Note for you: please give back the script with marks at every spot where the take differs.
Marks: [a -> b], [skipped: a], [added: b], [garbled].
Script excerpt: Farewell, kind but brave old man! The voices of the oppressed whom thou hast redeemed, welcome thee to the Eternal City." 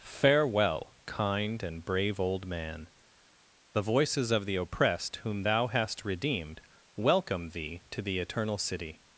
Farewell, kind [but -> and] brave old man! The voices of the oppressed whom thou hast redeemed, welcome thee to the Eternal City."